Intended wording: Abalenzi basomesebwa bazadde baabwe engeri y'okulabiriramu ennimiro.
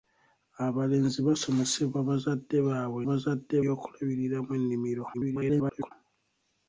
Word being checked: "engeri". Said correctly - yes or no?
no